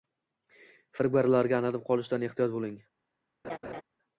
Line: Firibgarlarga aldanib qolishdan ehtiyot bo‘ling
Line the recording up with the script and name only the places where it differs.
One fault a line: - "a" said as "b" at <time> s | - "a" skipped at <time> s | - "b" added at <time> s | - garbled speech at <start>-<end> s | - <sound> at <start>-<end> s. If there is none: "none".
- laugh at 3.4-3.8 s